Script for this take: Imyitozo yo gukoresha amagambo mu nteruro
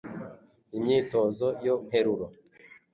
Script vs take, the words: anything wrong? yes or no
yes